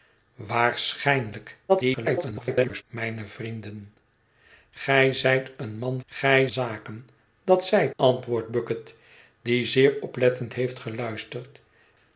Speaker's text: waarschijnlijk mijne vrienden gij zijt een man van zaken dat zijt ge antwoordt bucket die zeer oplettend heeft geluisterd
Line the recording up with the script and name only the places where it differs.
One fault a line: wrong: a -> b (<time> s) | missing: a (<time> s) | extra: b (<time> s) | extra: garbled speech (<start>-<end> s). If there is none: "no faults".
extra: garbled speech (1.7-2.8 s)
wrong: van -> gij (6.0 s)
missing: ge (8.0 s)